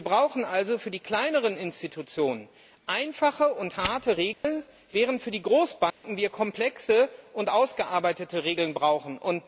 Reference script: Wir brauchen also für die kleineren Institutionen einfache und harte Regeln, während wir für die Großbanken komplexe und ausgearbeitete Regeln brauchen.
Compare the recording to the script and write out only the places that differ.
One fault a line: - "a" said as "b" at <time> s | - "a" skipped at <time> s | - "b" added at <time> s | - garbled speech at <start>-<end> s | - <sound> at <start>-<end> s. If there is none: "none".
- dropout at 4.3-4.4 s
- dropout at 5.9-6.0 s